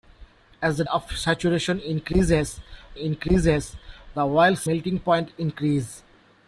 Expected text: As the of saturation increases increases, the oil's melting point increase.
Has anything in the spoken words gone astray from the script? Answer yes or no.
no